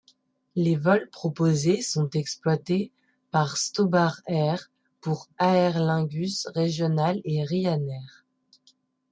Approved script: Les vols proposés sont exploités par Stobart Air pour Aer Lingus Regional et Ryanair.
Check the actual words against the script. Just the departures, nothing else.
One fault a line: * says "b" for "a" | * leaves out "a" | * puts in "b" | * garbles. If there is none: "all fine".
all fine